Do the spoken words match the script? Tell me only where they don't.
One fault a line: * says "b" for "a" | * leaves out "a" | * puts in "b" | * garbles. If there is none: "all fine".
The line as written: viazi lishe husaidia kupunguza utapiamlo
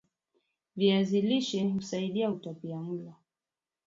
* leaves out "kupunguza"